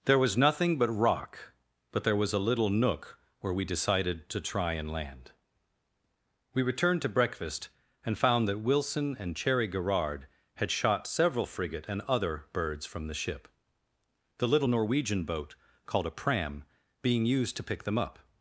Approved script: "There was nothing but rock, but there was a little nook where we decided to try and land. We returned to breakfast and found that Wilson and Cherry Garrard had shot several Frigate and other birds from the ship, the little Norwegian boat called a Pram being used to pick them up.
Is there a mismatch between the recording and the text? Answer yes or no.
no